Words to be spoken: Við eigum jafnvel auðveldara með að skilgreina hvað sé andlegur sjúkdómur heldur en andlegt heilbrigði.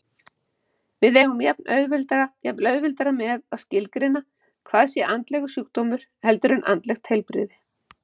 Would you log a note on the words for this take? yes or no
no